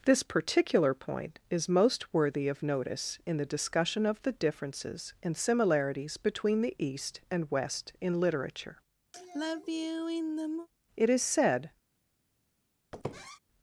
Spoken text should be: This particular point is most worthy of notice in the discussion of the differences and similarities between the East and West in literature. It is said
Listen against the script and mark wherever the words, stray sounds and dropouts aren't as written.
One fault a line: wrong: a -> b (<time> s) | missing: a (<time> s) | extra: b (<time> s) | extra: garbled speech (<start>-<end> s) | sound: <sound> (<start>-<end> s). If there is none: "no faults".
sound: sigh (9.1-10.7 s)
sound: squeak (12.9-13.4 s)